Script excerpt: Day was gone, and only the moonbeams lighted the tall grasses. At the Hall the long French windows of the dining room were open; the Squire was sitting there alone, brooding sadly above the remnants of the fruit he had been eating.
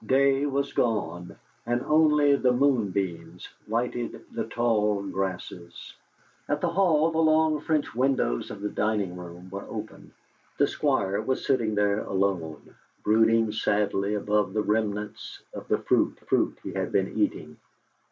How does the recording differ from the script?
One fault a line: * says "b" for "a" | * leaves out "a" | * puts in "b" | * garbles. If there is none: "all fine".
* puts in "fruit"